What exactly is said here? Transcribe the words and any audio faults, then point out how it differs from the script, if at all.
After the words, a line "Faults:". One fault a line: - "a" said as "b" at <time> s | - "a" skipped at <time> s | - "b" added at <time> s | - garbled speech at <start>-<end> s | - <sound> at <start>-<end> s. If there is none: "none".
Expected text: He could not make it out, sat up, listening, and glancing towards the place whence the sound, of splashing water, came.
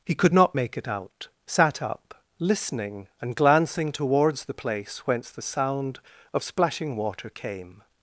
He could not make it out, sat up, listening, and glancing towards the place whence the sound, of splashing water, came.
Faults:
none